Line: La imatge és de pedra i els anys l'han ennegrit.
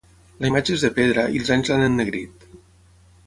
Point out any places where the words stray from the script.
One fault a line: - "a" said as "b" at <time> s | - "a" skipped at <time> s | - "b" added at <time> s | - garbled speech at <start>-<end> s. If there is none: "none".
none